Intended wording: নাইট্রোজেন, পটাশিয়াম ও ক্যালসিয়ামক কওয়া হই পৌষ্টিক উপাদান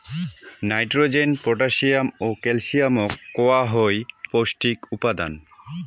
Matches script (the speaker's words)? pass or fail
pass